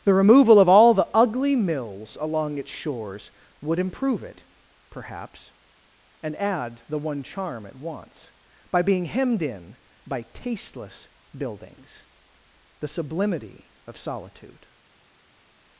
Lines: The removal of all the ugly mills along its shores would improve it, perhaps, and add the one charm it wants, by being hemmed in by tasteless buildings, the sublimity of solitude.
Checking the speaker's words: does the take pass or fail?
pass